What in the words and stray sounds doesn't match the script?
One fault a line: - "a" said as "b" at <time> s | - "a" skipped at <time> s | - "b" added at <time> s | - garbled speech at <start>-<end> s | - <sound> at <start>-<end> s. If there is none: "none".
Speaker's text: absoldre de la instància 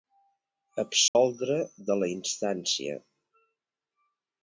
- dropout at 1.1-1.2 s